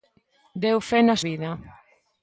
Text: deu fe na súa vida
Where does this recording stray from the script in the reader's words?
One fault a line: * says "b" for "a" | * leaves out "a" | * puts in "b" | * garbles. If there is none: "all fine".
* leaves out "súa"